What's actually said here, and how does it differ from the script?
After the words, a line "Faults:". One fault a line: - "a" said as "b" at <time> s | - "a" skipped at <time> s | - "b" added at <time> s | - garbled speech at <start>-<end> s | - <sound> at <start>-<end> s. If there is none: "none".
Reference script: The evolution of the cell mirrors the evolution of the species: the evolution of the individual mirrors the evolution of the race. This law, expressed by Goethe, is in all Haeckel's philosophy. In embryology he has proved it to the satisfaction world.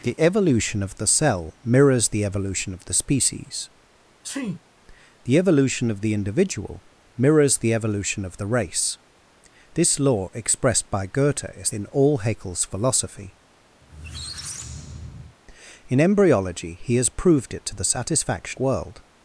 The evolution of the cell mirrors the evolution of the species: the evolution of the individual mirrors the evolution of the race. This law, expressed by Goethe, is in all Haeckel's philosophy. In embryology he has proved it to the satisfaction world.
Faults:
- sneeze at 4.2-4.6 s
- squeak at 13.8-15.4 s